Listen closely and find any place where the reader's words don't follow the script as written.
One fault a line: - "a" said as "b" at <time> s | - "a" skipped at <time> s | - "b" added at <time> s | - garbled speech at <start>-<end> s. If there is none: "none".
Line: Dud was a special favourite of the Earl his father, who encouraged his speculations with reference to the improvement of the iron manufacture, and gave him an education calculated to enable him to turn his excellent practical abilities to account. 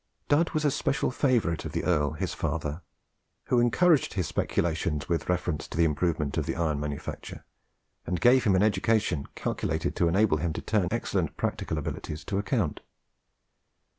- "his" skipped at 10.9 s